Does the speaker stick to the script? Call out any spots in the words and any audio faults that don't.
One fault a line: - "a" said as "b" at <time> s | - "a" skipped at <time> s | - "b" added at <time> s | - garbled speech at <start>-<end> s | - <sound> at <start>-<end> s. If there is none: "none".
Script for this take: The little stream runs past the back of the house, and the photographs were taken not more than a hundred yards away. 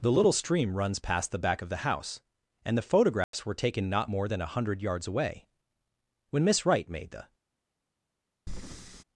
- dropout at 3.2-3.3 s
- "When Miss Wright made the" added at 6.3 s
- breath at 8.5-9.0 s